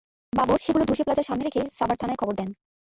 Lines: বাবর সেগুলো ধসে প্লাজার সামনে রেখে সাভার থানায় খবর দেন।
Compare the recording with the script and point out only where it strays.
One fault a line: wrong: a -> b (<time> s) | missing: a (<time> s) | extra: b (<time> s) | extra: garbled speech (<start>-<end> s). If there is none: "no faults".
no faults